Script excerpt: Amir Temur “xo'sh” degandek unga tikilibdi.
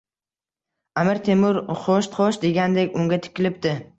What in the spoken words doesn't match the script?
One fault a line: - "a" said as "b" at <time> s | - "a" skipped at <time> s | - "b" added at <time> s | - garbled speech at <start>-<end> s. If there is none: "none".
- "xo'sh" added at 2.2 s